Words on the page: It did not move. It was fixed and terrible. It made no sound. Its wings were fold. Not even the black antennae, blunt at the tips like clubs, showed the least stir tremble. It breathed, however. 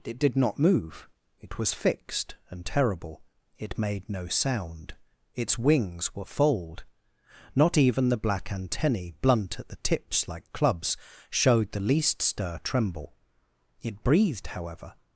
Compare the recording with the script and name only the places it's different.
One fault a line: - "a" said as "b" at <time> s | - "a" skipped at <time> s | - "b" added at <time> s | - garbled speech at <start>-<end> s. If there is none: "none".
none